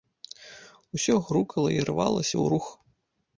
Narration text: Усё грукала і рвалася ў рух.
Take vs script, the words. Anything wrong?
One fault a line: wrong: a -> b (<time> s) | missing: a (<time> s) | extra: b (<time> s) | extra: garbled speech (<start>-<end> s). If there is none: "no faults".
no faults